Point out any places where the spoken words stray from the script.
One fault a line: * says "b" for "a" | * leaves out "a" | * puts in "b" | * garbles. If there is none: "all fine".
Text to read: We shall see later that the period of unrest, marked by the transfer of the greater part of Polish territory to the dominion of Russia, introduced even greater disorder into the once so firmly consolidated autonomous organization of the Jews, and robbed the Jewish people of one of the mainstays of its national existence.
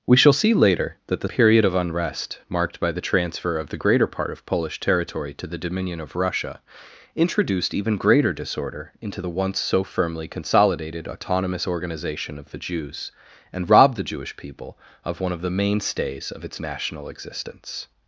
all fine